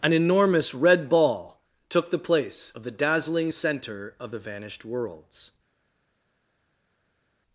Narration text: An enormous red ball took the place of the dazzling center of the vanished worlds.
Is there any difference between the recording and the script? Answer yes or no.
no